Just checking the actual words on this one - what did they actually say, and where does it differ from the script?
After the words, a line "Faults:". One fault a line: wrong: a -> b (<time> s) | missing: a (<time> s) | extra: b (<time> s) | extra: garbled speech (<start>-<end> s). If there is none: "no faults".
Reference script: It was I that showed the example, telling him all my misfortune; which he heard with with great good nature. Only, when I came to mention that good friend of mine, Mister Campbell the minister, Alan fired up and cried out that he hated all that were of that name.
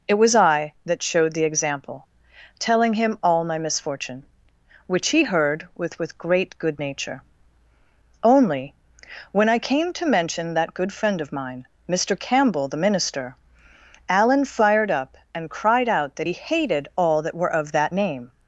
It was I that showed the example, telling him all my misfortune; which he heard with with great good nature. Only, when I came to mention that good friend of mine, Mister Campbell the minister, Alan fired up and cried out that he hated all that were of that name.
Faults:
no faults